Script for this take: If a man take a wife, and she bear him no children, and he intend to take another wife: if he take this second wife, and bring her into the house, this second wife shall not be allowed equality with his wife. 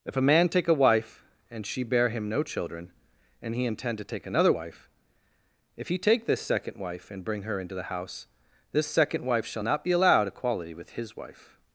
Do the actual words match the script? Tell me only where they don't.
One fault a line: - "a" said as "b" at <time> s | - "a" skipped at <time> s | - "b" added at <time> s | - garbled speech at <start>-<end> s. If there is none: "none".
none